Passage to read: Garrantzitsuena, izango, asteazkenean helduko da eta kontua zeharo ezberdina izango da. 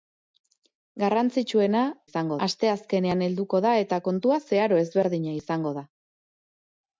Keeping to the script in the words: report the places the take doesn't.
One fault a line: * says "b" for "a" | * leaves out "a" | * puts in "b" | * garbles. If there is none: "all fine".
all fine